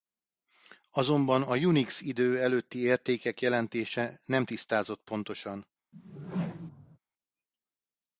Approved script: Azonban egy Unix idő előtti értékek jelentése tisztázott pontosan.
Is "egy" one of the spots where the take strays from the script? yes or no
yes